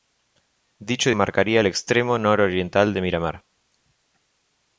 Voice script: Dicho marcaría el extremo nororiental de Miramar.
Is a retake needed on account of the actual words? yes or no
no